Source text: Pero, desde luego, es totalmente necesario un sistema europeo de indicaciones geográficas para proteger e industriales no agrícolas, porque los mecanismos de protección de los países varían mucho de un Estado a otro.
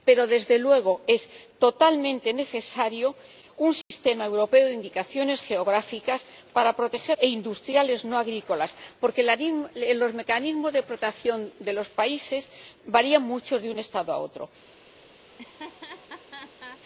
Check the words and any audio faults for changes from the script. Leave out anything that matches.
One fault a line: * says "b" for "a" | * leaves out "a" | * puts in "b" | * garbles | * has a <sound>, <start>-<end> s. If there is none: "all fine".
* has a dropout, 3.8-3.9 s
* has a laugh, 15.3-16.8 s